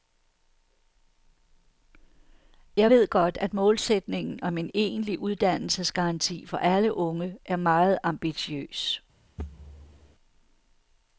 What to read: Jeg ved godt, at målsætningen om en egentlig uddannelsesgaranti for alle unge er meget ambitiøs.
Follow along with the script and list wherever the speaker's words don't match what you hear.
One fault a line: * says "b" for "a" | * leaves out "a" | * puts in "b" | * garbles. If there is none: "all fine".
all fine